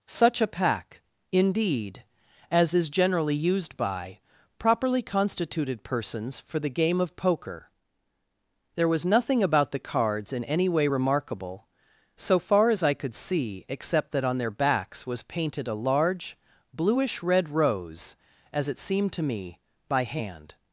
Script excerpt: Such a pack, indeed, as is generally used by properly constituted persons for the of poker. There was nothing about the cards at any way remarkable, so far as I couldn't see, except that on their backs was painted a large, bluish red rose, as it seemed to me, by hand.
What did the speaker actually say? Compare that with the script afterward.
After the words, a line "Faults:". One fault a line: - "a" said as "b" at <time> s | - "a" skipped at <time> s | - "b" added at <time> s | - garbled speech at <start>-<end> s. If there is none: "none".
Such a pack, indeed, as is generally used by properly constituted persons for the game of poker. There was nothing about the cards in any way remarkable, so far as I could see, except that on their backs was painted a large, bluish red rose, as it seemed to me, by hand.
Faults:
- "game" added at 6.7 s
- "at" said as "in" at 10.3 s
- "couldn't" said as "could" at 12.9 s